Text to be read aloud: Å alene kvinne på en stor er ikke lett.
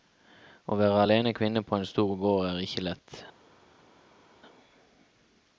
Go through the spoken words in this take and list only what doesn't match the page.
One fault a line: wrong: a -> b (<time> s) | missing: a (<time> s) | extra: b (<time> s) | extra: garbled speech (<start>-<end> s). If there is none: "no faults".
extra: være (0.8 s)
extra: gård (2.2 s)